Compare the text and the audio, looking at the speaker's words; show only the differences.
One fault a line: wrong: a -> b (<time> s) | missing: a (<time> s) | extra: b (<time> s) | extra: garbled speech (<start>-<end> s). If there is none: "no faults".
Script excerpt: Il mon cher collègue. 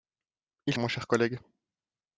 no faults